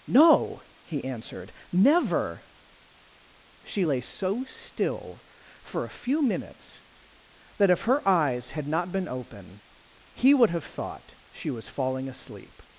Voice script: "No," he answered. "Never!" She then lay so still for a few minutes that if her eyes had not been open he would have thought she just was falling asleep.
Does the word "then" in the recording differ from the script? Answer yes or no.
yes